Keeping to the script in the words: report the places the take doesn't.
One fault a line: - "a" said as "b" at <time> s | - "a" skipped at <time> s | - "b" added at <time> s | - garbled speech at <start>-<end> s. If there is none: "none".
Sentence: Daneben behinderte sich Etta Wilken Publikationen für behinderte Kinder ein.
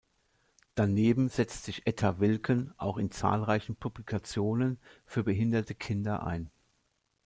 - "behinderte" said as "setzt" at 1.3 s
- "auch in zahlreichen" added at 2.8 s